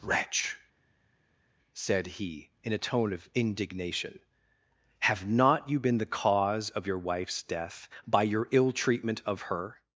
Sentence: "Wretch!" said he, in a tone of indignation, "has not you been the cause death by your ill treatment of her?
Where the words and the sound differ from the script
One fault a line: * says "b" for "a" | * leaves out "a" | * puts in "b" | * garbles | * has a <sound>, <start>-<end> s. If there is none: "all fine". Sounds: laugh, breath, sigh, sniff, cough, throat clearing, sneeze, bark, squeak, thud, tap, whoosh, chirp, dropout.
* says "have" for "has"
* puts in "of your wife's"